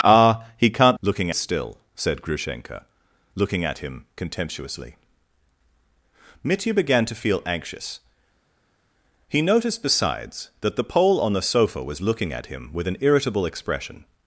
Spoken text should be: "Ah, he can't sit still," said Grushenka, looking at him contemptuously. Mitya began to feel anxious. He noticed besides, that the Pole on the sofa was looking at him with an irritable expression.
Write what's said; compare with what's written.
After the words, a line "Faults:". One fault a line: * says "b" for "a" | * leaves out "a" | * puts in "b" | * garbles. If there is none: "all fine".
"Ah, he can't looking still," said Grushenka, looking at him contemptuously. Mitya began to feel anxious. He noticed besides, that the Pole on the sofa was looking at him with an irritable expression.
Faults:
* says "looking" for "sit"